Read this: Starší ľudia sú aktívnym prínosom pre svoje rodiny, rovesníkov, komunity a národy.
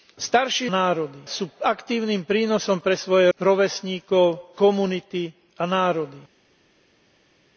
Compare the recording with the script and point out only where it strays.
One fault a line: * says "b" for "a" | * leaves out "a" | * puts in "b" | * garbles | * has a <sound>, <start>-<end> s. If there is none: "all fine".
* says "národy" for "ľudia"
* leaves out "rodiny"